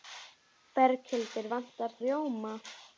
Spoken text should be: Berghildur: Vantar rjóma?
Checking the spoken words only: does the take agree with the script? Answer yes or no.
yes